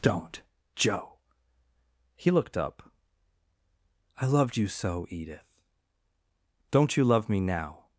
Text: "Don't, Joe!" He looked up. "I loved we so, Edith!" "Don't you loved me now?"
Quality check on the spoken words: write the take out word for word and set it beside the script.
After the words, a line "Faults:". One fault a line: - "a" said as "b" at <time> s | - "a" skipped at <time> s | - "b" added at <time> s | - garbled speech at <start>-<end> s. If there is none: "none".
"Don't, Joe!" He looked up. "I loved you so, Edith!" "Don't you love me now?"
Faults:
- "we" said as "you" at 4.6 s
- "loved" said as "love" at 7.0 s